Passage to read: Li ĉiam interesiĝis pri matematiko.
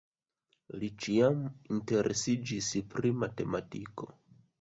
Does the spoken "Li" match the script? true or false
true